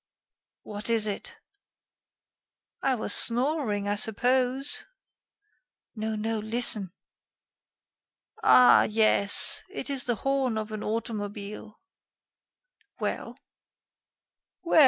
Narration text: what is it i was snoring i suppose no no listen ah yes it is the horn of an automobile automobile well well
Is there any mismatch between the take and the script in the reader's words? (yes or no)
yes